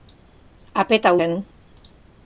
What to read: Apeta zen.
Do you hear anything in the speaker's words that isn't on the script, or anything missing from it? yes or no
no